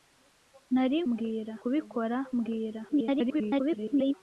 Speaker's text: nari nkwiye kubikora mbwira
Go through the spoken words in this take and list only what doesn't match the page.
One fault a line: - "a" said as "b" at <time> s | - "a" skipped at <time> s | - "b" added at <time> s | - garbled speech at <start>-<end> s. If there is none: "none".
- "nkwiye" said as "mbwira" at 1.1 s
- garbled speech at 2.9-4.1 s